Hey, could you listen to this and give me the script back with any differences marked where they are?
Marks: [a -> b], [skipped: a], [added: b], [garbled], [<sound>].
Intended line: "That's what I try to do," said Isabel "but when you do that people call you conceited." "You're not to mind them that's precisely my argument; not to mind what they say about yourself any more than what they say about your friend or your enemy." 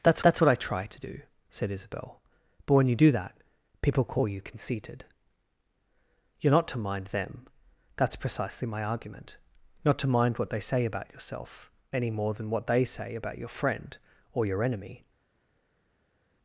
"That's [added: that's] what I try to do," said Isabel "but when you do that people call you conceited." "You're not to mind them that's precisely my argument; not to mind what they say about yourself any more than what they say about your friend or your enemy."